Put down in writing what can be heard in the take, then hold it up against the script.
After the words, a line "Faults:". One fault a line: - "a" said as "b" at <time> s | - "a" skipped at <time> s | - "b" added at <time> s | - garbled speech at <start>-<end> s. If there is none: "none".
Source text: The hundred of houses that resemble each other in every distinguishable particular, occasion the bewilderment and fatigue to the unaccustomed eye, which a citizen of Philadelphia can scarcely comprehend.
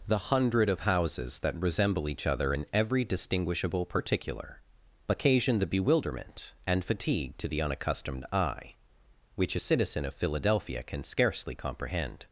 The hundred of houses that resemble each other in every distinguishable particular, occasion the bewilderment and fatigue to the unaccustomed eye, which a citizen of Philadelphia can scarcely comprehend.
Faults:
none